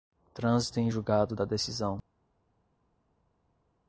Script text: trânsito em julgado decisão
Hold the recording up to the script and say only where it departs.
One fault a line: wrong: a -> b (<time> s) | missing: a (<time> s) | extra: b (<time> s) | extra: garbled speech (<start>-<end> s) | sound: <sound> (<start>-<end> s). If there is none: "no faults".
extra: da (1.3 s)